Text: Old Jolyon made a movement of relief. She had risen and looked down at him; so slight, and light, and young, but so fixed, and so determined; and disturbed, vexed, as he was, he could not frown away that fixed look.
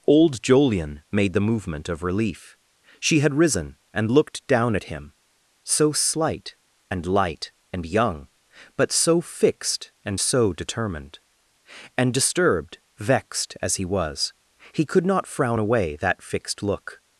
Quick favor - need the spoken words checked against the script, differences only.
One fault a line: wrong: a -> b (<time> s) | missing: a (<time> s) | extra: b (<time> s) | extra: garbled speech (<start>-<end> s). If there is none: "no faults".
wrong: a -> the (1.3 s)